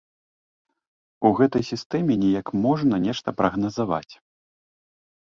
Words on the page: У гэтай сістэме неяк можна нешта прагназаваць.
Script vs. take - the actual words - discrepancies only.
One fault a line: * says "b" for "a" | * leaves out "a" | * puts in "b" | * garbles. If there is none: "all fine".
all fine